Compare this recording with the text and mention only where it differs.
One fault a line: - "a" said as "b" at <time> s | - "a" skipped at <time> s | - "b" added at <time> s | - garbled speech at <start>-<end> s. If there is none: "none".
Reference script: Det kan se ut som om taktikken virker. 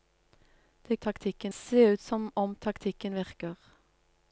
- "kan" said as "taktikken" at 0.9 s